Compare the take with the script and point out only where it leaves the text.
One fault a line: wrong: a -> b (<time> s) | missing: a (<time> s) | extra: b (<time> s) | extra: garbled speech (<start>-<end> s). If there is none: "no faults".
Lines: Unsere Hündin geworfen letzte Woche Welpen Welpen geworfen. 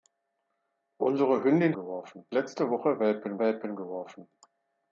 no faults